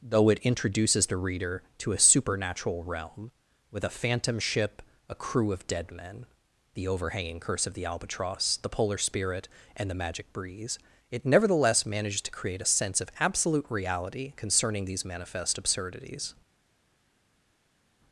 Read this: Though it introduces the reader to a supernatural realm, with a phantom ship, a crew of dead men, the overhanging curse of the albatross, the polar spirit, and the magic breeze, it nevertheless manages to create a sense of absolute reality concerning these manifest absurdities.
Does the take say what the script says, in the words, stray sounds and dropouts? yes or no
yes